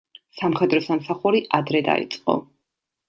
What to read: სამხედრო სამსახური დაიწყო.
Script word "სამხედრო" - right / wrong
right